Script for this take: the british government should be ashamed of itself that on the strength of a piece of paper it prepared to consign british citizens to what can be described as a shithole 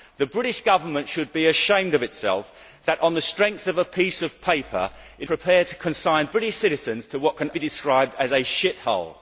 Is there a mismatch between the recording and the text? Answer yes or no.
no